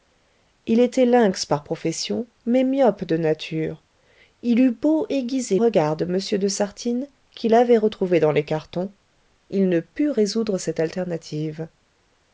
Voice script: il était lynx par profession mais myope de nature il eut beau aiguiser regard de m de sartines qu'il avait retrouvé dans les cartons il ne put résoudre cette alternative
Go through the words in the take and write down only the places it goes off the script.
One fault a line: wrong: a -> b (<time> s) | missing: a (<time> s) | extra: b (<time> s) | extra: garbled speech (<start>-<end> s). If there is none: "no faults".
no faults